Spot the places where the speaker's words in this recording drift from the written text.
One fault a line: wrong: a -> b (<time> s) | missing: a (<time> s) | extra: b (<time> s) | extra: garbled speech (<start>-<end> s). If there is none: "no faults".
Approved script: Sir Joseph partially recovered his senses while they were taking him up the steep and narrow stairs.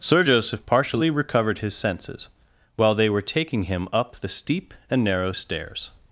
no faults